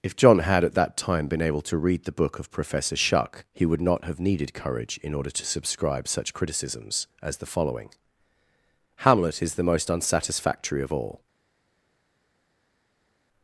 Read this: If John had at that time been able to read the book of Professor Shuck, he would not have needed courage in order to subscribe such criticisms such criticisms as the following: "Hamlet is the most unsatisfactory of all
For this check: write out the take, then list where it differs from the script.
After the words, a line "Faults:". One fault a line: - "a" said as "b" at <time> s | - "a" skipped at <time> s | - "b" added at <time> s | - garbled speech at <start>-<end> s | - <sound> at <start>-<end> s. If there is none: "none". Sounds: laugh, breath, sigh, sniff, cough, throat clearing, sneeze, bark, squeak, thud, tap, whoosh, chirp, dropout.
If John had at that time been able to read the book of Professor Shuck, he would not have needed courage in order to subscribe such criticisms as the following: "Hamlet is the most unsatisfactory of all
Faults:
- "such criticisms" skipped at 7.0 s